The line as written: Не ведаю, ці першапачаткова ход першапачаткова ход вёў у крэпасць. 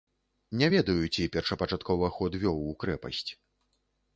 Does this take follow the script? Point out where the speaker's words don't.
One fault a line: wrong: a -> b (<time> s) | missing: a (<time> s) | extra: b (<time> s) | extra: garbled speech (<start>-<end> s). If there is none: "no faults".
missing: першапачаткова ход (2.4 s)